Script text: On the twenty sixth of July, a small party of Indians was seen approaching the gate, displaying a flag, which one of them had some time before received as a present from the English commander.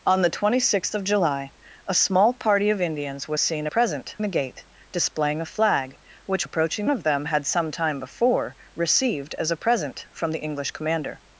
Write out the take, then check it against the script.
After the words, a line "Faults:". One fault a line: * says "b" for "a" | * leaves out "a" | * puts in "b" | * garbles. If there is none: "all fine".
On the twenty sixth of July, a small party of Indians was seen present the gate, displaying a flag, which approaching of them had some time before received as a present from the English commander.
Faults:
* says "present" for "approaching"
* says "approaching" for "one"